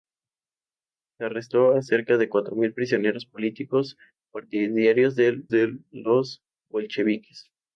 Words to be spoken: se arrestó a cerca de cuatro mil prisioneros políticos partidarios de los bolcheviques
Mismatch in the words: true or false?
true